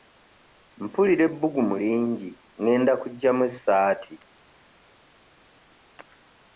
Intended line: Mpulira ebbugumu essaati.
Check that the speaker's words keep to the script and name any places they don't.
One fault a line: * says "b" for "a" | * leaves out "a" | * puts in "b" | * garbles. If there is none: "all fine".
* puts in "lingi ngenda kuggyamu"